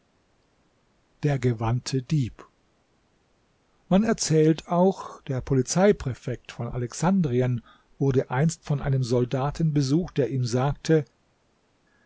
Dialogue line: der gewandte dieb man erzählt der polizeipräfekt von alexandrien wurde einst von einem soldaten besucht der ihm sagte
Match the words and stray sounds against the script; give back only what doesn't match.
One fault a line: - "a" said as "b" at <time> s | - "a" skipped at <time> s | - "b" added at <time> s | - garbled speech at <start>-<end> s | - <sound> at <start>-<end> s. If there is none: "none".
- "auch" added at 4.7 s